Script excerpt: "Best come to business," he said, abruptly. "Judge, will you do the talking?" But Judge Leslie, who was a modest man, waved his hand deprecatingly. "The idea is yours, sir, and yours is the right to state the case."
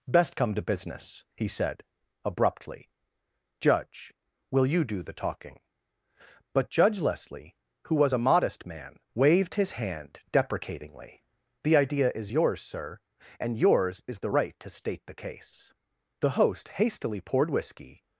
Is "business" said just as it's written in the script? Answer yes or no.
yes